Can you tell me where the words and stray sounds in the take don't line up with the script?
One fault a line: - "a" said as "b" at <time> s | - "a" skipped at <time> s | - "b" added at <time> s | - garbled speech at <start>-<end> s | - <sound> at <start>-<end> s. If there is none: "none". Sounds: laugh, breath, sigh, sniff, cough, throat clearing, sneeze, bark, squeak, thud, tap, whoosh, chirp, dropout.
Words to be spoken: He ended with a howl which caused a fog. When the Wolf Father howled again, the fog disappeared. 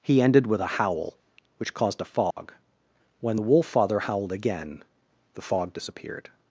- dropout at 2.3-2.4 s